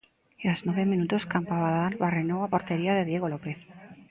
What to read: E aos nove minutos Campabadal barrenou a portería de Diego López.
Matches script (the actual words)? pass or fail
pass